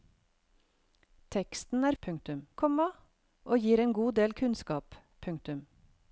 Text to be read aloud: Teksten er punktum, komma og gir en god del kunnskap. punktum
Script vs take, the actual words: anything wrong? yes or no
no